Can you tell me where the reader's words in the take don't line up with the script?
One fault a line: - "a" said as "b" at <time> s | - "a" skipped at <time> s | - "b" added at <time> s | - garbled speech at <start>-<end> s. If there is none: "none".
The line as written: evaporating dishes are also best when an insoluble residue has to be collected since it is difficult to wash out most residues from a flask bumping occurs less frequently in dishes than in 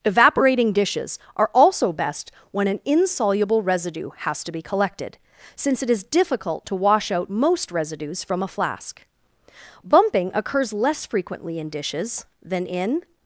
none